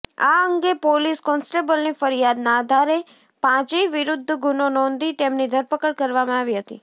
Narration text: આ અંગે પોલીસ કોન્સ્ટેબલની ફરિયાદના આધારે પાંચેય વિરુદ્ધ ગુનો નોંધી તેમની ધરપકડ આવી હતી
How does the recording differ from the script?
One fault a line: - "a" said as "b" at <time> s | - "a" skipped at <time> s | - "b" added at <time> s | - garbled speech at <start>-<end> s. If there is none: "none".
- "કરવામાં" added at 6.0 s